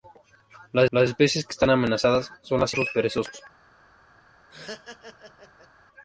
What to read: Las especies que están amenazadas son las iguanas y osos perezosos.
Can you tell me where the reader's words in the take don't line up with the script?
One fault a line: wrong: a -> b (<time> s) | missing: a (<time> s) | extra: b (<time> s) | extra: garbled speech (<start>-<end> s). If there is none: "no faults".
extra: las (0.9 s)
missing: iguanas y (2.8 s)